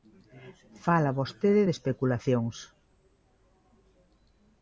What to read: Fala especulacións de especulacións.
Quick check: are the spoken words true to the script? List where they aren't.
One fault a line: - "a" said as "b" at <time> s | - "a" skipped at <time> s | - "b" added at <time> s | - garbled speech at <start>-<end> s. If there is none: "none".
- "especulacións" said as "vostede" at 1.2 s